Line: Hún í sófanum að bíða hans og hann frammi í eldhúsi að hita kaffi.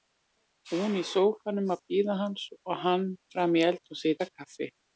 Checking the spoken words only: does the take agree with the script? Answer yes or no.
yes